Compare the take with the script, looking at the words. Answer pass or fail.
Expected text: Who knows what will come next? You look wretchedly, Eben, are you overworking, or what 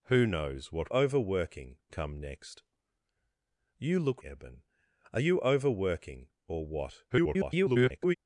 fail